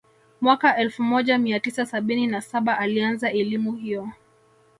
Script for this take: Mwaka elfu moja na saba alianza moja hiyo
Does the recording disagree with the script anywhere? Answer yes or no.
yes